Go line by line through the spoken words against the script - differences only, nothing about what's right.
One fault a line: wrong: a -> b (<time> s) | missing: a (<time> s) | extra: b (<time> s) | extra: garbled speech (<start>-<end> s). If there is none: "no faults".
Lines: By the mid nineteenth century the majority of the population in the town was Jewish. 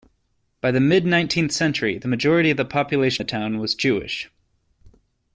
missing: in (3.2 s)